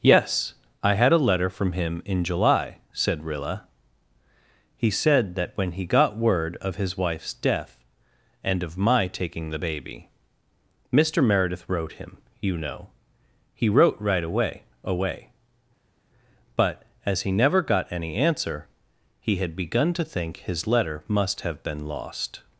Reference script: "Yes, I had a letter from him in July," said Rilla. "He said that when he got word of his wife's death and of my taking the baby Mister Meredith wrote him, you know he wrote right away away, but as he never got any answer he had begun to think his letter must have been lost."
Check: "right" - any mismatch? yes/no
no